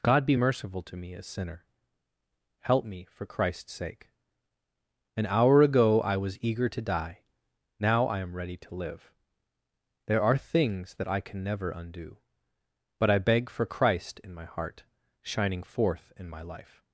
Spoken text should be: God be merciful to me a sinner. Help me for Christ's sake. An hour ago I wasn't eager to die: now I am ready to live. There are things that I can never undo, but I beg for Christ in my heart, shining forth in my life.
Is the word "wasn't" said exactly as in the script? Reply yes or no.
no